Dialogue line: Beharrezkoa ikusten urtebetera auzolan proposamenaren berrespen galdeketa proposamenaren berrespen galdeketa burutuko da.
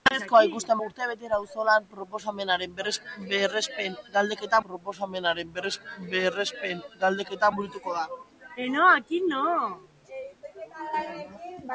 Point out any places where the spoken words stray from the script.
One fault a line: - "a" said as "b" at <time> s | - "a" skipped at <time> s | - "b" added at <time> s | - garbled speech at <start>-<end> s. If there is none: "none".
none